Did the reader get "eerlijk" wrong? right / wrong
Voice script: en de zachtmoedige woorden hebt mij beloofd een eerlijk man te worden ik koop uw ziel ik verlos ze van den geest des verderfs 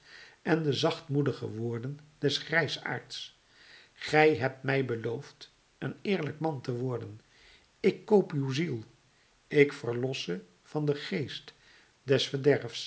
right